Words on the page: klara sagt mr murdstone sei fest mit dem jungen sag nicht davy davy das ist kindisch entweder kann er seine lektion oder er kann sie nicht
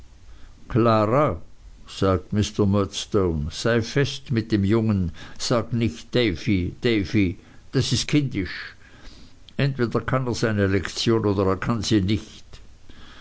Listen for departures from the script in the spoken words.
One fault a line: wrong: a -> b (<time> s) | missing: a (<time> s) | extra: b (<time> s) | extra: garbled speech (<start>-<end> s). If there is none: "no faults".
no faults